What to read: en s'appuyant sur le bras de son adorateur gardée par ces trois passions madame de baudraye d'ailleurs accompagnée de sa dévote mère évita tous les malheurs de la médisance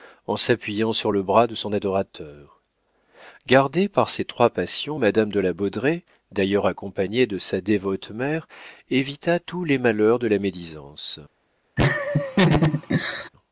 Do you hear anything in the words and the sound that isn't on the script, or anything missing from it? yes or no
yes